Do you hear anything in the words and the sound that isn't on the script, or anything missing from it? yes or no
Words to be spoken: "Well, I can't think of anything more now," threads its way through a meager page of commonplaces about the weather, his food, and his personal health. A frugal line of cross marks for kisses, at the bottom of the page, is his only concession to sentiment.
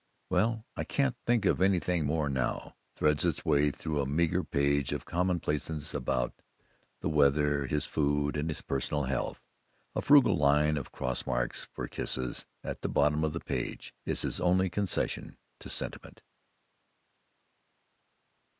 no